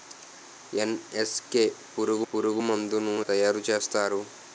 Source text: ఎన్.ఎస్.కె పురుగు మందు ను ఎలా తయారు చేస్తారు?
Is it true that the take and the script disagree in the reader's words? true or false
true